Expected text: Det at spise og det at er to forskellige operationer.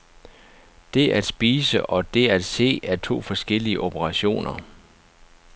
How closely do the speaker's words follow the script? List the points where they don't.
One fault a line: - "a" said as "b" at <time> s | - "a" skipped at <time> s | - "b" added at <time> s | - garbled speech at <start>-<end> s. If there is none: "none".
- "se" added at 2.4 s